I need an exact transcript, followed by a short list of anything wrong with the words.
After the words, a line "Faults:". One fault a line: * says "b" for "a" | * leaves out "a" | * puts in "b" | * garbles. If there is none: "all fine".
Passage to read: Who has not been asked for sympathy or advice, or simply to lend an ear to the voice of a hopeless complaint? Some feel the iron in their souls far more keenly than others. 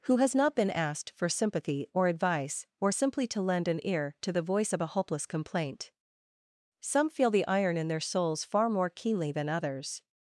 Who has not been asked for sympathy or advice, or simply to lend an ear to the voice of a hopeless complaint? Some feel the iron in their souls far more keenly than others.
Faults:
all fine